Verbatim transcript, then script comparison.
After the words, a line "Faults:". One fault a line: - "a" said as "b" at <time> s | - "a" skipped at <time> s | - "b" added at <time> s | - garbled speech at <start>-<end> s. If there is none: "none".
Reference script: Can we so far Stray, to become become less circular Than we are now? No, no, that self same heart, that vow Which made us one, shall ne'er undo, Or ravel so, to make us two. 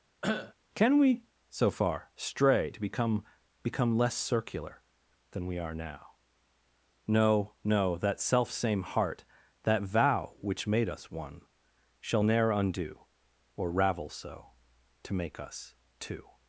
Can we so far Stray, to become become less circular Than we are now? No, no, that self same heart, that vow Which made us one, shall ne'er undo, Or ravel so, to make us two.
Faults:
none